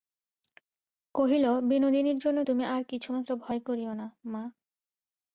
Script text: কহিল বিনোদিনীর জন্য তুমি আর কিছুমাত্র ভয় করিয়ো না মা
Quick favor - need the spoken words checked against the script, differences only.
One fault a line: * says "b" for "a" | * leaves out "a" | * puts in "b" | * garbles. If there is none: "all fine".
all fine